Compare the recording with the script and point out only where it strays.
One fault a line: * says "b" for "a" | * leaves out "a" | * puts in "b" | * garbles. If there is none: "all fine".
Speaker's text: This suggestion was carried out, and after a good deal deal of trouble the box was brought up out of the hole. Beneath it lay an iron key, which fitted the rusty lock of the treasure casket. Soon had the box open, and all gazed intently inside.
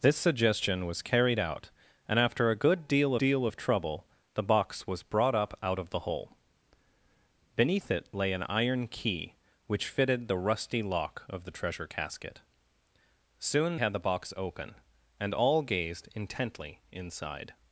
all fine